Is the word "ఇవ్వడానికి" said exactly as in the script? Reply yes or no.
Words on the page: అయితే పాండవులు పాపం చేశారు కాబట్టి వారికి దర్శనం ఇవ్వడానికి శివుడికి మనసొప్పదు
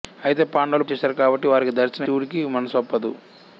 no